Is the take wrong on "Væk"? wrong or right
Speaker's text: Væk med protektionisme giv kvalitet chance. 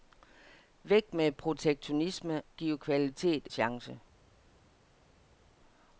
right